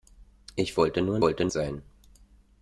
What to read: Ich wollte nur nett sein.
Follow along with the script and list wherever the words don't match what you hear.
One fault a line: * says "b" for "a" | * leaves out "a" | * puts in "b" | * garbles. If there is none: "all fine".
* says "wollte" for "nett"